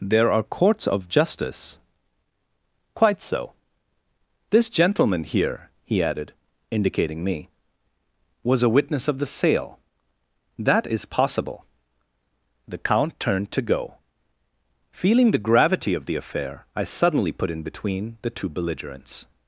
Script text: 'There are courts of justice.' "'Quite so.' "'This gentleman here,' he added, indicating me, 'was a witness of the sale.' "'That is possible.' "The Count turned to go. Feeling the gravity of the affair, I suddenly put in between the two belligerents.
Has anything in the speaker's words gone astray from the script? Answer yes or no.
no